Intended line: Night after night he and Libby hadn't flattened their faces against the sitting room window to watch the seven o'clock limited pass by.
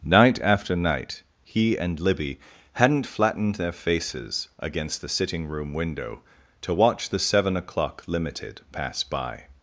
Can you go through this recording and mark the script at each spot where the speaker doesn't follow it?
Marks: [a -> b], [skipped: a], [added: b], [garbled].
Night after night he and Libby hadn't flattened their faces against the sitting room window to watch the seven o'clock limited pass by.